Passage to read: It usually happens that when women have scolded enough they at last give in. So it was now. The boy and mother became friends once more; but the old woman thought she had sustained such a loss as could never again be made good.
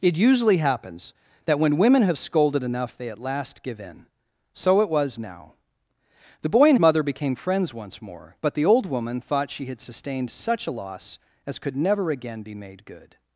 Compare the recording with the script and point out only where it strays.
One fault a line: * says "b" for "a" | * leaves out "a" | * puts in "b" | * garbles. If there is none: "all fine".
all fine